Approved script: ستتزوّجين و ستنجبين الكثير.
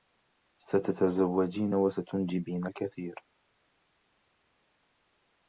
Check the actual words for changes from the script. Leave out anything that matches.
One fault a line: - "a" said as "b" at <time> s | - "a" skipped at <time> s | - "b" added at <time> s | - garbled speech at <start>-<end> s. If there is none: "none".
none